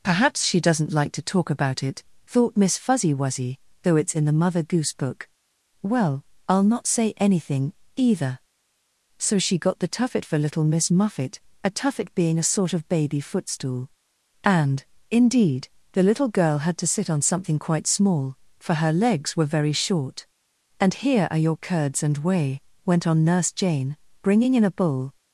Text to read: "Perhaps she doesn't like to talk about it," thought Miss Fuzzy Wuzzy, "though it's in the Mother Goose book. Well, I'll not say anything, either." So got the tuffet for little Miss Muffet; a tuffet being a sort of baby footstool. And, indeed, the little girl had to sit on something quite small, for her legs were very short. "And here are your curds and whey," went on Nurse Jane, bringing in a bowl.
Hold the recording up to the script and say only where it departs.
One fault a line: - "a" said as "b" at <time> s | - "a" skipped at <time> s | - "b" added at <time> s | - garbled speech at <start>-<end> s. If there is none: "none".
- "she" added at 9.4 s